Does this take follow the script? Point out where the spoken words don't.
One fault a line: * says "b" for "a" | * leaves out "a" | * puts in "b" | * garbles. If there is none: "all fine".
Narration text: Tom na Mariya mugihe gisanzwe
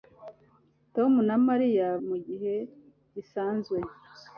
all fine